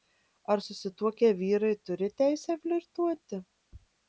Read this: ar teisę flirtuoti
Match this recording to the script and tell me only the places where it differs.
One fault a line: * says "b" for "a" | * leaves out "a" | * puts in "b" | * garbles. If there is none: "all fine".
* puts in "susituokę vyrai turi"